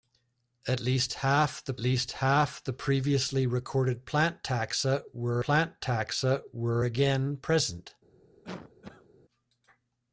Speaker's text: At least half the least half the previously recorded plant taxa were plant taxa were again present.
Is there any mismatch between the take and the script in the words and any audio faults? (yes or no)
yes